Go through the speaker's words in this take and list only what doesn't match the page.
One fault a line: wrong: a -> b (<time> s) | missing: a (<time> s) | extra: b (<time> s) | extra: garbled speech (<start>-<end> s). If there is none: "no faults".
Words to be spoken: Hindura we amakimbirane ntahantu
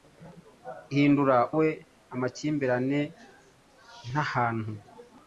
no faults